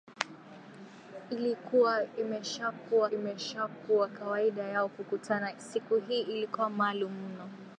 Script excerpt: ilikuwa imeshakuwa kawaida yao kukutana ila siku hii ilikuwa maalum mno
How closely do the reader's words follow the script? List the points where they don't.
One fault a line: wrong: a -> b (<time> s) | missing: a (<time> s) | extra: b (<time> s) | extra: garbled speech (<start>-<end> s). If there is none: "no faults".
extra: imeshakuwa (3.1 s)
missing: ila (5.5 s)